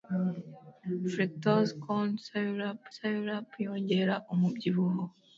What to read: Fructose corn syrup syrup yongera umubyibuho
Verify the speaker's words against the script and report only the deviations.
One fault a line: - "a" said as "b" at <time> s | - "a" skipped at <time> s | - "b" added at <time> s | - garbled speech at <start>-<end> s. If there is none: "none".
none